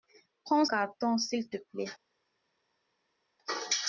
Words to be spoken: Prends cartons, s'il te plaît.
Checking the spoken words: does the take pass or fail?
pass